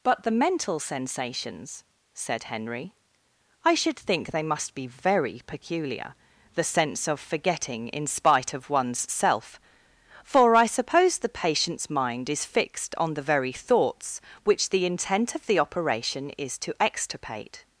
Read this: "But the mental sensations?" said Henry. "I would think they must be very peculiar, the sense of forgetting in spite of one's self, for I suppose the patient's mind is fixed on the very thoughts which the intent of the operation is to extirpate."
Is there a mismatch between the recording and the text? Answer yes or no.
yes